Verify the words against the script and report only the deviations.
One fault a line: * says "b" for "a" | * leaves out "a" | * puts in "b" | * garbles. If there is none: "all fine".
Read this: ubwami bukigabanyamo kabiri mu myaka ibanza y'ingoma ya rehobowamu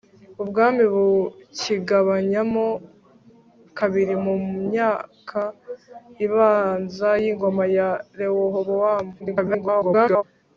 * garbles